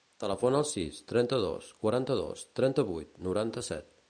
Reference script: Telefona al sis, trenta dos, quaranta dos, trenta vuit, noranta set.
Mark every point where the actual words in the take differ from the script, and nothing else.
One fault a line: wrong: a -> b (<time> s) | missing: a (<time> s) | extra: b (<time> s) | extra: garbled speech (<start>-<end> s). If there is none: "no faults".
no faults